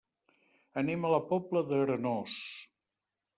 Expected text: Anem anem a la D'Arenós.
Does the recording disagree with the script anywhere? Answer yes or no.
yes